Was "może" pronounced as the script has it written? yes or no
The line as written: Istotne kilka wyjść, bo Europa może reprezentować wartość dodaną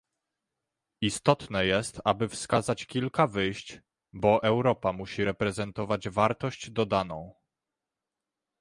no